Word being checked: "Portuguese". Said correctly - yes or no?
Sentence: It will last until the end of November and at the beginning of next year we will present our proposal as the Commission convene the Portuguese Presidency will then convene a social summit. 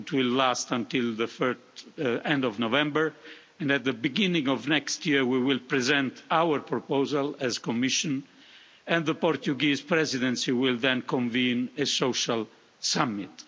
yes